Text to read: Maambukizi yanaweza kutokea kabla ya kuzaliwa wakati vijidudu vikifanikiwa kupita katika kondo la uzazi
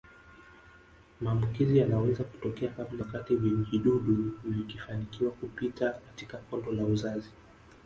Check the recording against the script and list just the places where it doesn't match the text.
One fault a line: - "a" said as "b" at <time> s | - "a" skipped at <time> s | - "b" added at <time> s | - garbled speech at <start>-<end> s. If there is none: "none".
- "ya kuzaliwa" skipped at 3.0 s